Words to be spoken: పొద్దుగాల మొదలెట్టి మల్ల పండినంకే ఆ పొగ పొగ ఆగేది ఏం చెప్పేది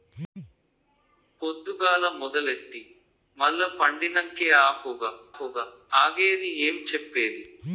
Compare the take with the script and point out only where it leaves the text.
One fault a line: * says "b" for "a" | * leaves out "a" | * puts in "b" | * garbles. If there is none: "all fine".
all fine